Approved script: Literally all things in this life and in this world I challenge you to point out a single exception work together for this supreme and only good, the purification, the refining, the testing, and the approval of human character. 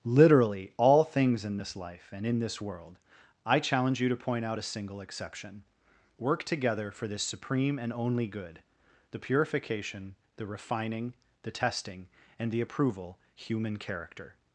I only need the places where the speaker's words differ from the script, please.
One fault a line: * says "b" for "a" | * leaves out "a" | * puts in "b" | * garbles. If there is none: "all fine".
* leaves out "of"